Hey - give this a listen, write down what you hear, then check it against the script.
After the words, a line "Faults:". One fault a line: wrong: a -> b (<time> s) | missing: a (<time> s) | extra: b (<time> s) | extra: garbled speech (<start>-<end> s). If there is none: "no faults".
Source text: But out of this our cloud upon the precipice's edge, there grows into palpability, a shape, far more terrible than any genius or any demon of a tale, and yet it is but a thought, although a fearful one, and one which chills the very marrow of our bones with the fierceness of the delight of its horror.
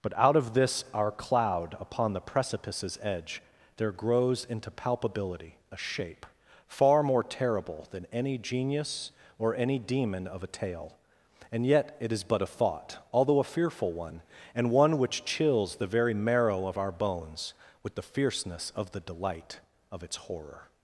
But out of this our cloud upon the precipice's edge, there grows into palpability, a shape, far more terrible than any genius or any demon of a tale, and yet it is but a thought, although a fearful one, and one which chills the very marrow of our bones with the fierceness of the delight of its horror.
Faults:
no faults